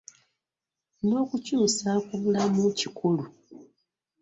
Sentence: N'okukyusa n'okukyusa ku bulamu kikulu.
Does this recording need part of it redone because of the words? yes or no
yes